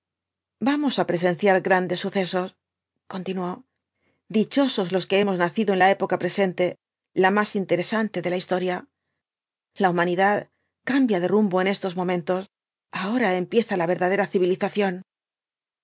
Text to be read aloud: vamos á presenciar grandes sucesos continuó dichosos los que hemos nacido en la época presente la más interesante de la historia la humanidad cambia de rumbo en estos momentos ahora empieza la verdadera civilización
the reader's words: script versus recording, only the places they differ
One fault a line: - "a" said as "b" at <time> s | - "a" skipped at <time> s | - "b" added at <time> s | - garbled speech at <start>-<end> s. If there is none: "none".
none